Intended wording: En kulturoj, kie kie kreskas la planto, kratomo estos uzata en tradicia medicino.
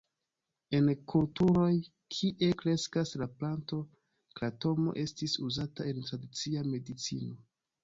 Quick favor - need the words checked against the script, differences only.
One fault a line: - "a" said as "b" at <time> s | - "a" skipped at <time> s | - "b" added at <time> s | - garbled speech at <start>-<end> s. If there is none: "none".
- "kie" skipped at 2.5 s
- "estos" said as "estis" at 5.0 s